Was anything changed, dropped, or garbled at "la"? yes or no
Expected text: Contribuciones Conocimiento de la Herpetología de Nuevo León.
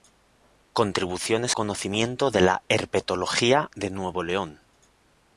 no